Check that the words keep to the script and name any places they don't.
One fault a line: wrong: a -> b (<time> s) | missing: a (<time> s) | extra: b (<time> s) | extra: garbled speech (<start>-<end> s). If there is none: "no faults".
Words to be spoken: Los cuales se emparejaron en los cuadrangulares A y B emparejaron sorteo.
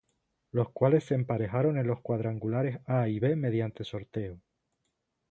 wrong: emparejaron -> mediante (3.4 s)